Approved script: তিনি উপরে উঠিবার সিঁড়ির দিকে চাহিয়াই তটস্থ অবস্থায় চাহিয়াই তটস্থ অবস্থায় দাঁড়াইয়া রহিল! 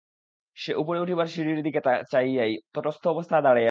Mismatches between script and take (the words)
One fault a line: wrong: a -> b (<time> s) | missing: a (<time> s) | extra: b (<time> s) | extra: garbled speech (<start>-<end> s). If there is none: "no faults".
wrong: তিনি -> সে (0.6 s)
missing: চাহিয়াই তটস্থ অবস্থায় (3.4 s)